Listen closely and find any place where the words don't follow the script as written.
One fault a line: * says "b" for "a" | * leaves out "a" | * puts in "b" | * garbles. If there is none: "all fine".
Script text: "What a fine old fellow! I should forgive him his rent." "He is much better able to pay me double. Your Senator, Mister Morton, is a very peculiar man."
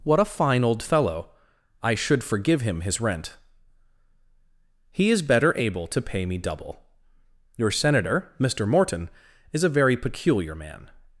* leaves out "much"